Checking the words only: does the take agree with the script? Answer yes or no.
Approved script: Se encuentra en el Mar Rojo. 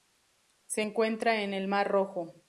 yes